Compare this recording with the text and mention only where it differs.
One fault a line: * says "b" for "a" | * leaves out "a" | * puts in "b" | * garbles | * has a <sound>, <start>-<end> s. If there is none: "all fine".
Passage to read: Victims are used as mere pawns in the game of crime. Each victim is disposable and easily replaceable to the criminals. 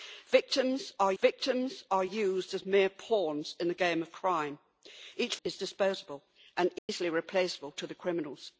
* puts in "victims are"
* leaves out "victim"
* has a dropout, 6.8-6.9 s